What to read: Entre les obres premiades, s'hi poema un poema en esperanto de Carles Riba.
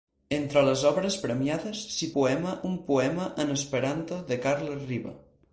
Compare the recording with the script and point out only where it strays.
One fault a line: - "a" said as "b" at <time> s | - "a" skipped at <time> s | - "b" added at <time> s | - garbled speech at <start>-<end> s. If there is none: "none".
none